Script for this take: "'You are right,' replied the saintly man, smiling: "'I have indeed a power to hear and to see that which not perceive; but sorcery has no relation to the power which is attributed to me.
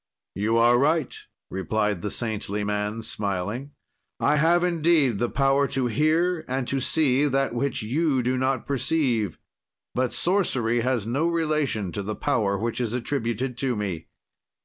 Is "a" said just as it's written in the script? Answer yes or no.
no